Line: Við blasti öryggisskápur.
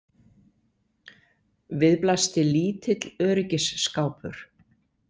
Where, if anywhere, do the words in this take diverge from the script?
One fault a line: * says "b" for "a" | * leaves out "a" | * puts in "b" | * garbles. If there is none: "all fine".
* puts in "lítill"